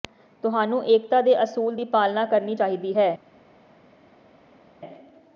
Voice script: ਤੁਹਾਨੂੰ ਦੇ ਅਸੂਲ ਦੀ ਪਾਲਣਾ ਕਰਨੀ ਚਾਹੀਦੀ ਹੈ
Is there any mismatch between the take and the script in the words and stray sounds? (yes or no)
yes